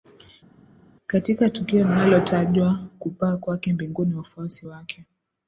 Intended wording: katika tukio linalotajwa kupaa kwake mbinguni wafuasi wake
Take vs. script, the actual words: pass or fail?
pass